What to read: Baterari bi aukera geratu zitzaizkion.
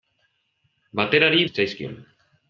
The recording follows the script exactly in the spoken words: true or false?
false